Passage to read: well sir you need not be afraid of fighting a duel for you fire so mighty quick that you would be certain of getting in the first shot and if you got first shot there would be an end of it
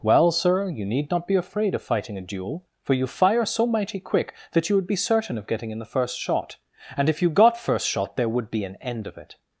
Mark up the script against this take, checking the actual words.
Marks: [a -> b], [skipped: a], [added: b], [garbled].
well sir you need not be afraid of fighting a duel for you fire so mighty quick that you would be certain of getting in the first shot and if you got first shot there would be an end of it